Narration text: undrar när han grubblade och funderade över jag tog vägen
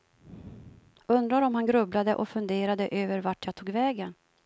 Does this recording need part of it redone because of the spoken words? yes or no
yes